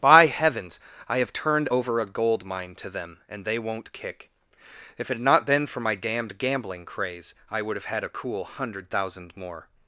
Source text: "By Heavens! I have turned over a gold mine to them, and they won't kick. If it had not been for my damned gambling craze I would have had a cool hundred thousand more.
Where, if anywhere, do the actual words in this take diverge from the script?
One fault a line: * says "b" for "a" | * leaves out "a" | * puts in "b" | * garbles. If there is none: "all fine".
all fine